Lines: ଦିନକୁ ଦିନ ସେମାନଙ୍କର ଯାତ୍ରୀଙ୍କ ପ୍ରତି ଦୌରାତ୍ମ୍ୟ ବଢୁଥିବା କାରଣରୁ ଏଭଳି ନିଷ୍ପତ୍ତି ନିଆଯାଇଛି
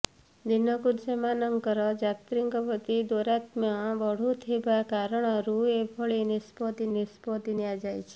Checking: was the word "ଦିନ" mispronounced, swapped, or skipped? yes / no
yes